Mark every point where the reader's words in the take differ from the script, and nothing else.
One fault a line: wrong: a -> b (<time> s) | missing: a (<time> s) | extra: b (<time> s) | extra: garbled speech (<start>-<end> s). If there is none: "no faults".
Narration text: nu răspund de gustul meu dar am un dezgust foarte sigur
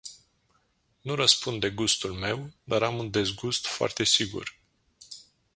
no faults